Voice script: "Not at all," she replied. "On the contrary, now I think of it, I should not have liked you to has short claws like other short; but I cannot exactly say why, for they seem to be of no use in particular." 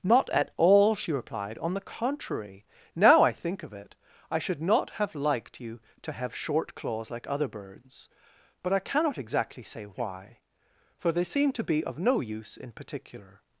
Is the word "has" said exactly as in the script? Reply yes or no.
no